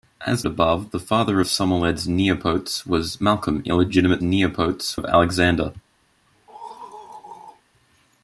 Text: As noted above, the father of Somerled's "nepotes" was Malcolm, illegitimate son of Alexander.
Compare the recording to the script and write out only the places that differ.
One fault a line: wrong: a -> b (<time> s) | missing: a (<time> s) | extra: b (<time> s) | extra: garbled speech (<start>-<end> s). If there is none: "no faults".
missing: noted (0.5 s)
wrong: son -> nepotes (4.2 s)